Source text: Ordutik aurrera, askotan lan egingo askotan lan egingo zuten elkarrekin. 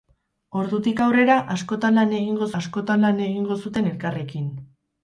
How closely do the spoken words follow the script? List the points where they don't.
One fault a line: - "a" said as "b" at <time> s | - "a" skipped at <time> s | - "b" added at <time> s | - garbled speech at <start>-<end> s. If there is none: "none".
none